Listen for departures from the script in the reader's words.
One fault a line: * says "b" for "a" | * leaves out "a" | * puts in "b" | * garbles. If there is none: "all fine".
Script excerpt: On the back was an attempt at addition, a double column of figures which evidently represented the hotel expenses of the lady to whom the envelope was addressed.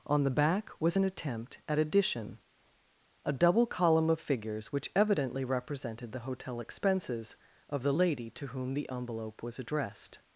all fine